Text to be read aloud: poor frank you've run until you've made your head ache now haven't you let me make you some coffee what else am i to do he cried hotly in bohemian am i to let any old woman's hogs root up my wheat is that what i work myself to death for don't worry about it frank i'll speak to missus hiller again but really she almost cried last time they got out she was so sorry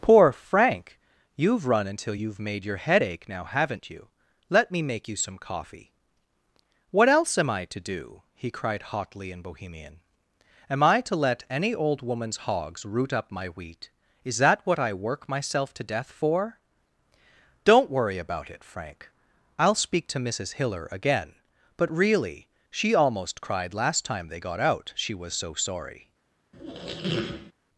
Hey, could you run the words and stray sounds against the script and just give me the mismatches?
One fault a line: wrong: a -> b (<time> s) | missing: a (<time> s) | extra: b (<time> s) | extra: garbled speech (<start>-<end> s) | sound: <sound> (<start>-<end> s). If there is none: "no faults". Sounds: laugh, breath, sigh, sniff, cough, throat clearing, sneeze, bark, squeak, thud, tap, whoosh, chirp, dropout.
sound: squeak (26.5-27.5 s)